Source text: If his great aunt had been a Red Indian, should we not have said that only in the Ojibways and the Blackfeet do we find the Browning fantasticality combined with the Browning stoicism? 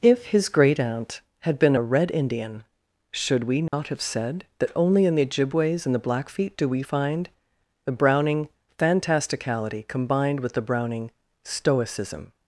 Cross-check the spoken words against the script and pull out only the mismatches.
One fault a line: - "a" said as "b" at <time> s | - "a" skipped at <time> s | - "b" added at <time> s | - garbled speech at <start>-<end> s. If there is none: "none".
none